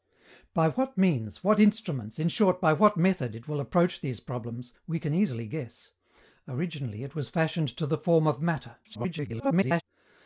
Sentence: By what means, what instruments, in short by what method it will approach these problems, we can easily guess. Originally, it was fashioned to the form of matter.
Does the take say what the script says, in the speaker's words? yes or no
no